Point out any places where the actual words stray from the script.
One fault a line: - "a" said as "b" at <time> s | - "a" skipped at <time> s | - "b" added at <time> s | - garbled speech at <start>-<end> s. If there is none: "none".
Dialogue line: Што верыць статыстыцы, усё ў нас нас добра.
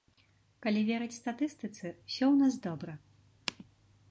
- "Што" said as "Калі" at 0.7 s
- "нас" skipped at 2.5 s